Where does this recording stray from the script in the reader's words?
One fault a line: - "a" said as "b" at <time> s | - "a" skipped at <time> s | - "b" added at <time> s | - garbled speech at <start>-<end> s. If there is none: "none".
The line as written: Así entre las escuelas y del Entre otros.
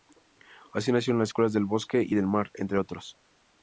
- "entre" said as "nacieron" at 0.9 s
- "del Bosque" added at 1.5 s
- "Mar" added at 2.3 s